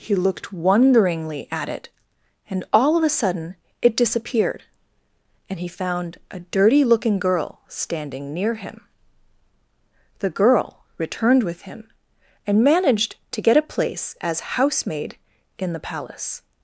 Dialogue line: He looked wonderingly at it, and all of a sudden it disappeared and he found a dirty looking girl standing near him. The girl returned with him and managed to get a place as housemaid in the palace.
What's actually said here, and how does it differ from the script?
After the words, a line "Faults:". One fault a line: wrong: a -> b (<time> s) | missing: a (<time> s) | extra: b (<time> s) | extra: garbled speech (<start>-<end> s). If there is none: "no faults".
He looked wonderingly at it, and all of a sudden it disappeared and he found a dirty looking girl standing near him. The girl returned with him and managed to get a place as housemaid in the palace.
Faults:
no faults